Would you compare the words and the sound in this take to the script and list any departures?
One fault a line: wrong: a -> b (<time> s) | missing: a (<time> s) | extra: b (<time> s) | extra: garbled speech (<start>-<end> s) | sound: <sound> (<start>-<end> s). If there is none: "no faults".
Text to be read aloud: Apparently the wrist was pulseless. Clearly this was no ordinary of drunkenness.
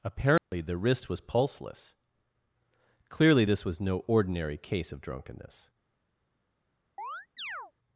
sound: dropout (0.4-0.5 s)
extra: case (4.6 s)
sound: chirp (7.0-7.7 s)